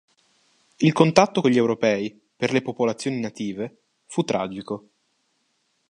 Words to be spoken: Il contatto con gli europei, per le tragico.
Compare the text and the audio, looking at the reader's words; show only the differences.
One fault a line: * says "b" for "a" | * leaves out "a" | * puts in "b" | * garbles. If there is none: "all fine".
* puts in "popolazioni native fu"